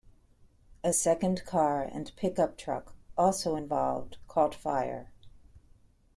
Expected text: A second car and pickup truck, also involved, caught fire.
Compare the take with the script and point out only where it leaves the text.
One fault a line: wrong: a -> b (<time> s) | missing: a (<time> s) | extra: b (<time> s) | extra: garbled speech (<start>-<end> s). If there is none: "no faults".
no faults